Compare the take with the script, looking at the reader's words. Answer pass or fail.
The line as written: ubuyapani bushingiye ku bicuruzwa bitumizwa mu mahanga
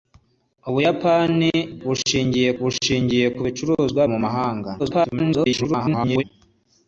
fail